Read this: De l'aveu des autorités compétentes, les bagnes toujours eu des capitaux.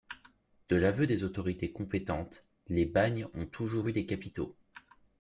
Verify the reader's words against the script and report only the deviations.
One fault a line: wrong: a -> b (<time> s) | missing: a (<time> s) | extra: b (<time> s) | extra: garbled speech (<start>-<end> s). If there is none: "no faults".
extra: ont (3.4 s)